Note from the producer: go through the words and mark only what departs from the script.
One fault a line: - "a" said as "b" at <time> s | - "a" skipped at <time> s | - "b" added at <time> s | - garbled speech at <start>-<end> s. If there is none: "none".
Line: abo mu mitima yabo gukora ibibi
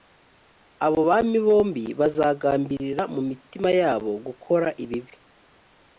- "bami bombi bazagambirira" added at 1.1 s